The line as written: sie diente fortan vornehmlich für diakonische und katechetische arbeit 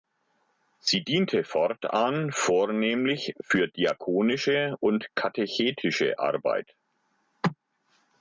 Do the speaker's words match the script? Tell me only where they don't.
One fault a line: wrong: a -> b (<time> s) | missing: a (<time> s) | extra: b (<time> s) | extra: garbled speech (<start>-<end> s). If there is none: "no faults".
no faults